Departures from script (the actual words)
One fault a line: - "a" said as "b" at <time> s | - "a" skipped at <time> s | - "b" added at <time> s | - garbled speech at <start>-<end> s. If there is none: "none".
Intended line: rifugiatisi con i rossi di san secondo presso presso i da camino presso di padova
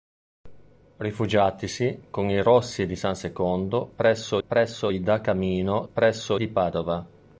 none